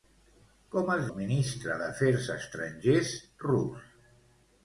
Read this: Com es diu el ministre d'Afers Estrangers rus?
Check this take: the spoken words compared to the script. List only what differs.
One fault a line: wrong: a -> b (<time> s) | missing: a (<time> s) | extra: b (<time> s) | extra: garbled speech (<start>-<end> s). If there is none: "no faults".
missing: diu (1.0 s)